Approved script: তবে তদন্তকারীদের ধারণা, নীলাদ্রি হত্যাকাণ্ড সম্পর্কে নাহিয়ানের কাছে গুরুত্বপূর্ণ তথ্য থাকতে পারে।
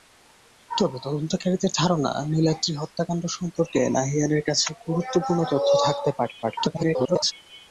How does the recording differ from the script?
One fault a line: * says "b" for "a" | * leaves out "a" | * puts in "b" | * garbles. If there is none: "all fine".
* garbles